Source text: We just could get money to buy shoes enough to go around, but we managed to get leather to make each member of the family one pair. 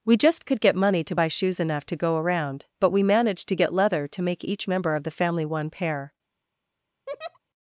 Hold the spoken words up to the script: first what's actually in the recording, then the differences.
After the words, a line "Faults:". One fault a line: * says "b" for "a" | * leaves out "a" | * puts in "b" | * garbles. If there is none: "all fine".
We just could get money to buy shoes enough to go around, but we managed to get leather to make each member of the family one pair.
Faults:
all fine